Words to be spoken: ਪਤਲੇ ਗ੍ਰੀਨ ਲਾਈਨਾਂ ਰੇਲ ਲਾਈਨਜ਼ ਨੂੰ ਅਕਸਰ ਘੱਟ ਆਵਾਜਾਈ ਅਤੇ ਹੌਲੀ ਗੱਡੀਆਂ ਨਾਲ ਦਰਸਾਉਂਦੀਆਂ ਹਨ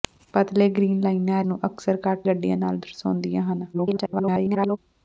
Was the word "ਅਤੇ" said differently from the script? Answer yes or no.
yes